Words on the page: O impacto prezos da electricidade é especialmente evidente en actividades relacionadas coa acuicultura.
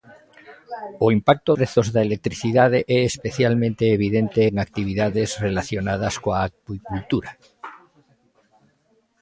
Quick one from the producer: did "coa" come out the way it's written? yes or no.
yes